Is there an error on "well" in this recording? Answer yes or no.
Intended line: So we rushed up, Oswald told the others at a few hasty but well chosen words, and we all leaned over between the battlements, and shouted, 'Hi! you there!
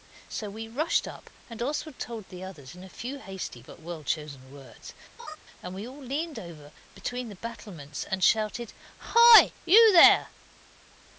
no